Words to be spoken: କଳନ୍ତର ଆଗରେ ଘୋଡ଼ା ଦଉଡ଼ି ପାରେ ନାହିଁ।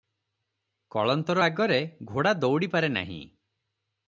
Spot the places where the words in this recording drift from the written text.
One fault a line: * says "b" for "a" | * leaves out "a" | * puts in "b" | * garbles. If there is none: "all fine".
all fine